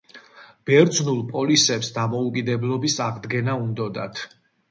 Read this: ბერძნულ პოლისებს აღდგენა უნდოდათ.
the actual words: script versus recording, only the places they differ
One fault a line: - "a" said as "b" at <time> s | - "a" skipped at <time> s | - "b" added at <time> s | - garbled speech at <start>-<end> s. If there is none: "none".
- "დამოუკიდებლობის" added at 2.0 s